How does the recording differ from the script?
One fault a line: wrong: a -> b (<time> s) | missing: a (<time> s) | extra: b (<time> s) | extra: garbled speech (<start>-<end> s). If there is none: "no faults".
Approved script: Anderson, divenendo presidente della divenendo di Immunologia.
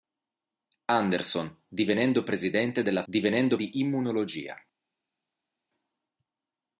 no faults